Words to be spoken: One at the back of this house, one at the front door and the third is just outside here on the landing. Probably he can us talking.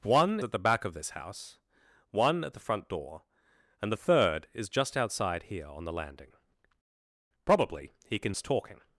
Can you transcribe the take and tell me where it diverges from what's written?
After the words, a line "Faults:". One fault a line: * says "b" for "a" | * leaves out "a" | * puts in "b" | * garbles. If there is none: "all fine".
One at the back of this house, one at the front door and the third is just outside here on the landing. Probably he can us talking.
Faults:
all fine